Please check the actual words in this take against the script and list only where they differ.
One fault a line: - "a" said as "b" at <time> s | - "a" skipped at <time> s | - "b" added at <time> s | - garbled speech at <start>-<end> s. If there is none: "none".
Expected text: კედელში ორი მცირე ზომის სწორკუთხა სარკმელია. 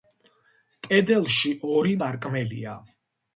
- "მცირე ზომის სწორკუთხა" skipped at 1.9 s